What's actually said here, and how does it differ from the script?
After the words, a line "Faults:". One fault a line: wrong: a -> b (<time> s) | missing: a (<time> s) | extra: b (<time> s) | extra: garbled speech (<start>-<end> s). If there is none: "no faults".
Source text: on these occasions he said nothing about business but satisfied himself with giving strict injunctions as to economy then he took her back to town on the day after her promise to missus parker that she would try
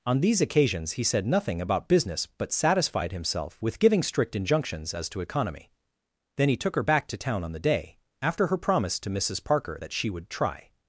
on these occasions he said nothing about business but satisfied himself with giving strict injunctions as to economy then he took her back to town on the day after her promise to missus parker that she would try
Faults:
no faults